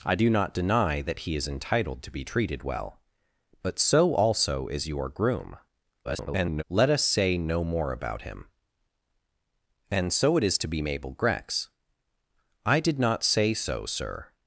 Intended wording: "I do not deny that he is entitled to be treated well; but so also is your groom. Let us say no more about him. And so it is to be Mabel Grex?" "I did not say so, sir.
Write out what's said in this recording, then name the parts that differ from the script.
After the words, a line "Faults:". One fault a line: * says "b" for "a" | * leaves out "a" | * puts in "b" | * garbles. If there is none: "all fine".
"I do not deny that he is entitled to be treated well; but so also is your groom. [garbled] Let us say no more about him. And so it is to be Mabel Grex?" "I did not say so, sir.
Faults:
* garbles